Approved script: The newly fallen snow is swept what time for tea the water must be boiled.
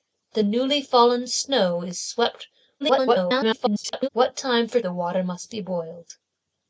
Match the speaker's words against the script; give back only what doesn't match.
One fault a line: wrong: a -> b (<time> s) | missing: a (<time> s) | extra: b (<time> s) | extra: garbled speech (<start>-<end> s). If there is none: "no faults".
extra: garbled speech (2.8-4.1 s)
missing: tea (4.8 s)